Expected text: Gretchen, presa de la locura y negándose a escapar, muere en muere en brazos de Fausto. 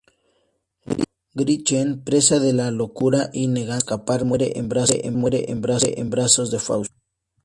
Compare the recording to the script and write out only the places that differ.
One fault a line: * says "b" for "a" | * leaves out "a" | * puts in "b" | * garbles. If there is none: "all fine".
all fine